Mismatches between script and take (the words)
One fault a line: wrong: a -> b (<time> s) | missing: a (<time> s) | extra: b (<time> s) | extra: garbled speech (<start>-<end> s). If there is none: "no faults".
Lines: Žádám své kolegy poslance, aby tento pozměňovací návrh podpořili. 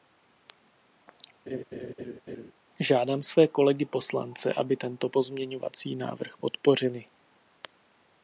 no faults